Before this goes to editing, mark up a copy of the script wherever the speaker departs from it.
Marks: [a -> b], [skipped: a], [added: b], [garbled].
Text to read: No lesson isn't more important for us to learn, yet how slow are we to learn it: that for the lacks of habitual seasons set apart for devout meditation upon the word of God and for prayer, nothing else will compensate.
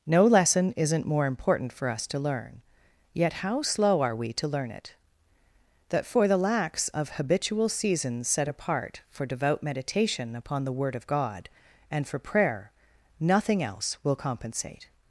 No lesson isn't more important for us to learn, yet how slow are we to learn it: that for the lacks of habitual seasons set apart for devout meditation upon the word of God and for prayer, nothing else will compensate.